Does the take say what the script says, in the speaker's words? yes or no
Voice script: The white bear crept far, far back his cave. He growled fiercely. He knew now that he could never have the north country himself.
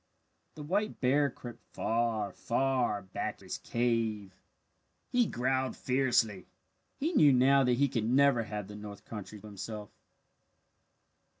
yes